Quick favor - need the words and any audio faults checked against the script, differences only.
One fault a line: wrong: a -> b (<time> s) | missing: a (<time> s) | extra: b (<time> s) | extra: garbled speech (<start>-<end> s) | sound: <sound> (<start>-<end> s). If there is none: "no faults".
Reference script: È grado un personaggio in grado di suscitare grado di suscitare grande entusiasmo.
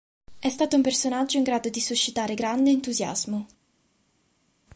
wrong: grado -> stato (0.5 s)
missing: grado di suscitare (2.4 s)